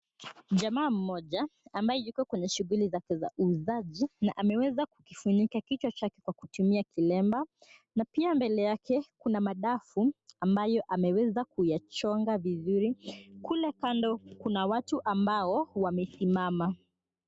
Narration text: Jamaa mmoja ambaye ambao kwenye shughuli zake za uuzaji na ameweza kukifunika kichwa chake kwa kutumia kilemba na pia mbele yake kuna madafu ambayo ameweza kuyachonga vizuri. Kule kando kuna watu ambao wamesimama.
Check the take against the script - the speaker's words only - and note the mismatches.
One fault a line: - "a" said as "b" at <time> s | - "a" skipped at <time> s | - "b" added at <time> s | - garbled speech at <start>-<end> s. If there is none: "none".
- "ambao" said as "yuko" at 2.0 s